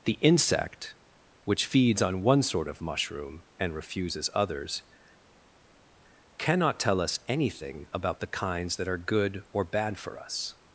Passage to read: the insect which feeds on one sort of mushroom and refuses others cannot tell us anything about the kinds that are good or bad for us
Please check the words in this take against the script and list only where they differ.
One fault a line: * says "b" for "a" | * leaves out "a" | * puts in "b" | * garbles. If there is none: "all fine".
all fine